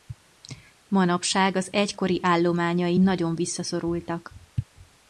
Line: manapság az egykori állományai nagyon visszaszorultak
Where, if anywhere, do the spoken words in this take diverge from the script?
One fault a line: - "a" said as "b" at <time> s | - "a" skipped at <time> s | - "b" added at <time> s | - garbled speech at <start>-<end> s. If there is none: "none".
none